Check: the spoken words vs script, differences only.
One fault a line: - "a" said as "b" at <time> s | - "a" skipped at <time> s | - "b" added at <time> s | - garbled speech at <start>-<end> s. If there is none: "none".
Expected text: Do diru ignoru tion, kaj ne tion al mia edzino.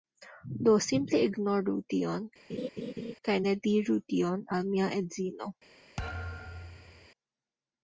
- "diru" said as "simple" at 0.8 s
- "diru" added at 3.7 s